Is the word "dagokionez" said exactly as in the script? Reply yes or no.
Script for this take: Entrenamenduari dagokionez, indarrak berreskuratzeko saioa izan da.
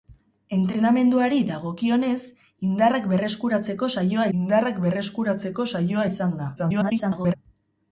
yes